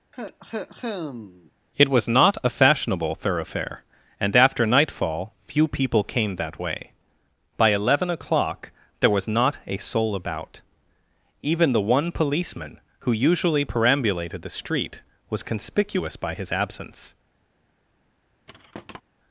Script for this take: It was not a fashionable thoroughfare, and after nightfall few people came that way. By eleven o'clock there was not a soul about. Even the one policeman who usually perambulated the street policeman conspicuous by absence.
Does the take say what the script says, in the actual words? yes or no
no